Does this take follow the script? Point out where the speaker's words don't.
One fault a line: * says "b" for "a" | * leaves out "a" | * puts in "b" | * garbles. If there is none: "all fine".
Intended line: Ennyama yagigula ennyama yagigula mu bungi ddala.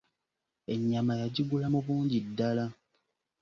* leaves out "ennyama yagigula"